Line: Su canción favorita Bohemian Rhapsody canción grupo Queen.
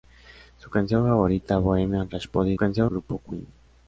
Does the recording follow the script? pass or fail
pass